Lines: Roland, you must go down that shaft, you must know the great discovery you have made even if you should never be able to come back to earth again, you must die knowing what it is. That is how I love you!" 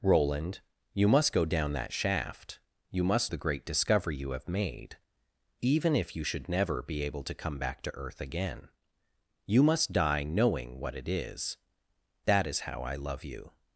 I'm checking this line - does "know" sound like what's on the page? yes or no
no